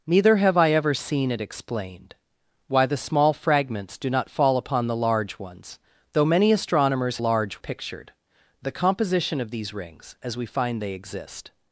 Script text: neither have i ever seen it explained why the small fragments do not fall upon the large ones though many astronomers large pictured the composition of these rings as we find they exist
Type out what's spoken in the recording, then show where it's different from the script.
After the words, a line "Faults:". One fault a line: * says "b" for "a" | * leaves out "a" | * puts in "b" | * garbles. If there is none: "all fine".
neither have i ever seen it explained why the small fragments do not fall upon the large ones though many astronomers large pictured the composition of these rings as we find they exist
Faults:
all fine